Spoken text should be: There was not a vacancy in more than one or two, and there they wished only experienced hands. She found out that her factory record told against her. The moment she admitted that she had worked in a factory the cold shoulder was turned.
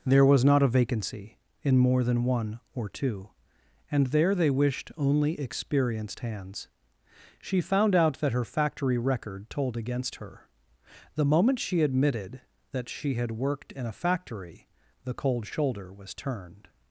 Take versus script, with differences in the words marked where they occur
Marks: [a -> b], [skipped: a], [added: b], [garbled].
There was not a vacancy in more than one or two, and there they wished only experienced hands. She found out that her factory record told against her. The moment she admitted that she had worked in a factory the cold shoulder was turned.